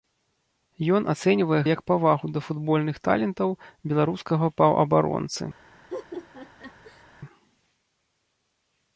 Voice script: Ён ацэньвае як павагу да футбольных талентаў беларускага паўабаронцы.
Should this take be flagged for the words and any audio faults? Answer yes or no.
yes